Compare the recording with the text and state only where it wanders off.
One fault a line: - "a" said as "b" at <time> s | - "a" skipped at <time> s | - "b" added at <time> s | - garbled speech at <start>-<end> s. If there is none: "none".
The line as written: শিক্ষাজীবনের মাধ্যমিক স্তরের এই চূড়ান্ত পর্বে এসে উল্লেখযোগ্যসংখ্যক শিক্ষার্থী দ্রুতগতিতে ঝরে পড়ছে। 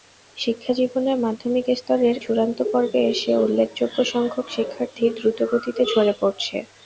- "এই" skipped at 2.1 s